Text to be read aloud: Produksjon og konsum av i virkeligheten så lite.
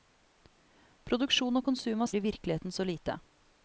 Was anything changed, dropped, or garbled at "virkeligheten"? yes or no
no